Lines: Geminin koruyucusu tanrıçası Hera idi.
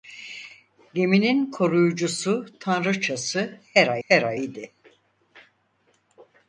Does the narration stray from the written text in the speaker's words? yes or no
yes